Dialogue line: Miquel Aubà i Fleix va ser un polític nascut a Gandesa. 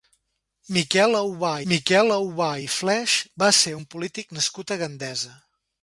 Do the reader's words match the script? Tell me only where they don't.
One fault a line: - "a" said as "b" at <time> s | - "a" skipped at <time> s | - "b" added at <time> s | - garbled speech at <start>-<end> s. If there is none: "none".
- "miquel Aubà" added at 1.7 s